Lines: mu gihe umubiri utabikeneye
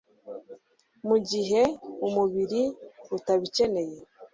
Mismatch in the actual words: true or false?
false